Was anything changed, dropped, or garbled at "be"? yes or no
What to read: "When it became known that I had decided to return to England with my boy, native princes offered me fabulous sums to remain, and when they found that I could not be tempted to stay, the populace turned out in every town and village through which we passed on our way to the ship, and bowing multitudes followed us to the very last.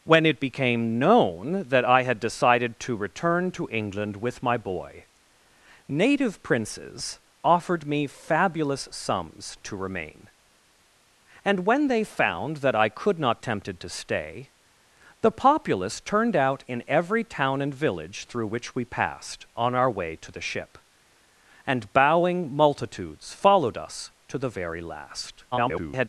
yes